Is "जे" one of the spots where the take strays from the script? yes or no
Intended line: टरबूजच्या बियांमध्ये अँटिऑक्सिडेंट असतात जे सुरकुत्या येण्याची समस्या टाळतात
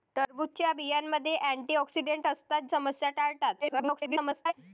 yes